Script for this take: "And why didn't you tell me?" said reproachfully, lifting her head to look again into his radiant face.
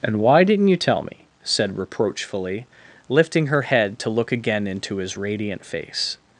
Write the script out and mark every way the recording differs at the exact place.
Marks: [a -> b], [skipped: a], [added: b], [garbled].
"And why didn't you tell me?" said reproachfully, lifting her head to look again into his radiant face.